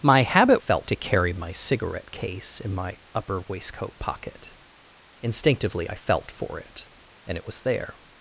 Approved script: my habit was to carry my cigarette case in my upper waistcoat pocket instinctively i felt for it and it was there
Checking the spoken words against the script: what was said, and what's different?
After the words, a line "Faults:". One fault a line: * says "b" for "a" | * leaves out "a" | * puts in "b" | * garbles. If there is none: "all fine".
my habit felt to carry my cigarette case in my upper waistcoat pocket instinctively i felt for it and it was there
Faults:
* says "felt" for "was"